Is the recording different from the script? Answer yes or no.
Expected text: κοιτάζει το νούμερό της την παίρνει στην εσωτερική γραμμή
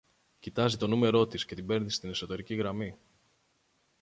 yes